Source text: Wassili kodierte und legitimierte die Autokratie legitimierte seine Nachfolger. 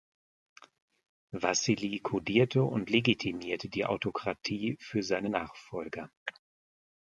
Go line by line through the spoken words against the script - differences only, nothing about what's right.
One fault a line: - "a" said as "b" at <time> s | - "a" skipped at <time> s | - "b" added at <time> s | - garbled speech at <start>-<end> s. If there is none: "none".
- "legitimierte" said as "für" at 4.8 s